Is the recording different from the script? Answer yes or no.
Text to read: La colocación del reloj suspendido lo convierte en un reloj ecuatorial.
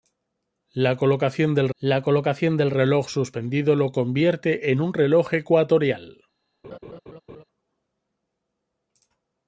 yes